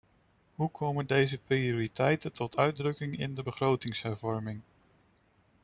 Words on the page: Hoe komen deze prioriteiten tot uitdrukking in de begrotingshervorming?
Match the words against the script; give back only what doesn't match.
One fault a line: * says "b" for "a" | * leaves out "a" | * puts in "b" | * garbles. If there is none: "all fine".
all fine